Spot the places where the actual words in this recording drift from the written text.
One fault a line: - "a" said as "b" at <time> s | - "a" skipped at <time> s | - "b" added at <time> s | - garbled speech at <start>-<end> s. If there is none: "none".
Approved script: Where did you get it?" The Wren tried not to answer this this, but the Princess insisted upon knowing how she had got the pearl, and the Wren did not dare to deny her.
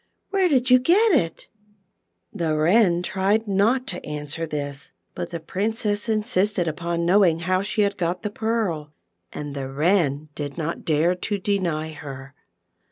- "this" skipped at 4.9 s